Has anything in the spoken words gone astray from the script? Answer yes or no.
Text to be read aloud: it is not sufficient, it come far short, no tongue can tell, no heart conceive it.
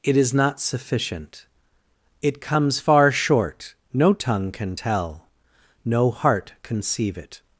yes